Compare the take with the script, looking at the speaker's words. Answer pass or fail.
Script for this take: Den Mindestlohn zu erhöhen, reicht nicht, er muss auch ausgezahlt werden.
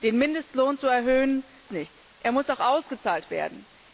fail